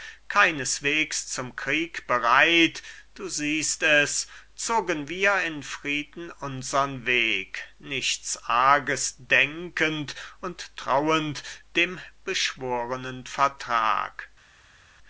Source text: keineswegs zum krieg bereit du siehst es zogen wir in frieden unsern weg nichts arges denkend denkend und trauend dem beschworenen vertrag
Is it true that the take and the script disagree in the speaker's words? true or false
true